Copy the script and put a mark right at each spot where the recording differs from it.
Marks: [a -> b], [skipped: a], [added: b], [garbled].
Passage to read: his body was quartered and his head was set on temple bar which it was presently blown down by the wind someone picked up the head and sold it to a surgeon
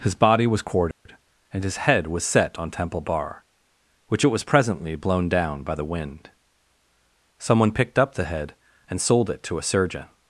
his body was quartered and his head was set on temple bar which it was presently blown down by the wind someone picked up the head and sold it to a surgeon